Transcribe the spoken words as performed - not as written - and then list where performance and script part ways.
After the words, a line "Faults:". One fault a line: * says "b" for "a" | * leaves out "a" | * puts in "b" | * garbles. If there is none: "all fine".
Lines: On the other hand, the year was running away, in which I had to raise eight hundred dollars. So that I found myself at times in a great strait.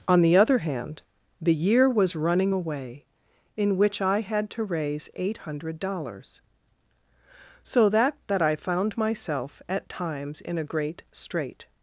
On the other hand, the year was running away, in which I had to raise eight hundred dollars. So that that I found myself at times in a great strait.
Faults:
* puts in "that"